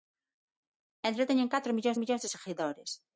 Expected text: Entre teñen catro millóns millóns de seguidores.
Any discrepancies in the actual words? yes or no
no